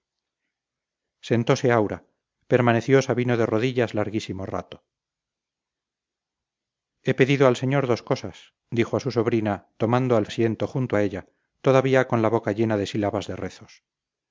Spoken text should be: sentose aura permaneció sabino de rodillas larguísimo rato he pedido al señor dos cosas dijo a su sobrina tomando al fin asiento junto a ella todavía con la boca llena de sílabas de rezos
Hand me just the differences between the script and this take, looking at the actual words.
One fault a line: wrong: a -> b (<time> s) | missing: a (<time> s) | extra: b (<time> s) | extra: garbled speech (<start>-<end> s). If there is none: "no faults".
missing: fin (10.2 s)